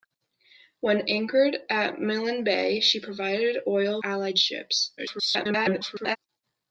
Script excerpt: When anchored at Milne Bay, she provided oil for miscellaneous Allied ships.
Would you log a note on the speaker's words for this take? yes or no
yes